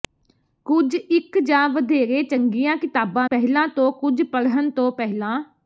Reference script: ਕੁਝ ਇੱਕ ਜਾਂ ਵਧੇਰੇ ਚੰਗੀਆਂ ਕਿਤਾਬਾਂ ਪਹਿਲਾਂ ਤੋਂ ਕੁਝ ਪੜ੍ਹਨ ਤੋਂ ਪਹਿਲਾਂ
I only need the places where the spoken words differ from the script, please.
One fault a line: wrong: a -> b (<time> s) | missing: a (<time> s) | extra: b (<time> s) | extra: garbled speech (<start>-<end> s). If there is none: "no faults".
no faults